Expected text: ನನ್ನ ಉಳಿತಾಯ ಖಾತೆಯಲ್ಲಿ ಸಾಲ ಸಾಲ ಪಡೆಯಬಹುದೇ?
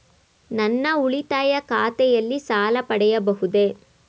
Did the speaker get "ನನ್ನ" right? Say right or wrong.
right